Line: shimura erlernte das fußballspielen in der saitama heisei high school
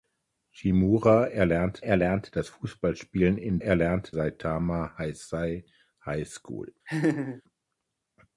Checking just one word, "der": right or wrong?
wrong